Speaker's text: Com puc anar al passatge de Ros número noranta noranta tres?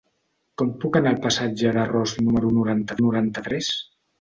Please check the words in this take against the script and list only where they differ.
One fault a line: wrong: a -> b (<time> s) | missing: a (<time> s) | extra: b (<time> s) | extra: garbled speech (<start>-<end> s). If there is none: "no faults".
no faults